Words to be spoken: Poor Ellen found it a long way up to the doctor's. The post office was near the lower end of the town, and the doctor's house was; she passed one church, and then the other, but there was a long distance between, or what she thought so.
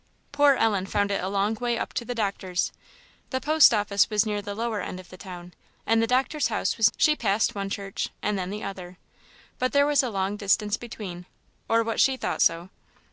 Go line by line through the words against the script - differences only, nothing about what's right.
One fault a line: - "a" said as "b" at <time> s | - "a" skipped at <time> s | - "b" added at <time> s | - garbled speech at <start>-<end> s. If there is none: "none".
none